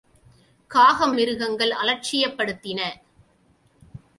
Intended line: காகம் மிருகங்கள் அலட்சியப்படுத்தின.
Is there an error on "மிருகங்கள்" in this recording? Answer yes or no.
no